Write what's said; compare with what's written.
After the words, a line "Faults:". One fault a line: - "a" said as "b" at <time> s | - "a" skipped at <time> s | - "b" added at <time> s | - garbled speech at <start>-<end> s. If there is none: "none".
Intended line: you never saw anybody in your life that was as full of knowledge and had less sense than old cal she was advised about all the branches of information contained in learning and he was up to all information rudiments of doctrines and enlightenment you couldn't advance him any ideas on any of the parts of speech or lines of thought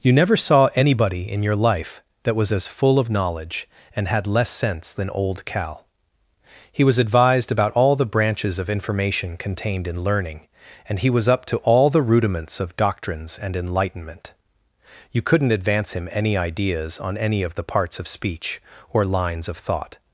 you never saw anybody in your life that was as full of knowledge and had less sense than old cal he was advised about all the branches of information contained in learning and he was up to all the rudiments of doctrines and enlightenment you couldn't advance him any ideas on any of the parts of speech or lines of thought
Faults:
- "she" said as "he" at 6.7 s
- "information" said as "the" at 11.9 s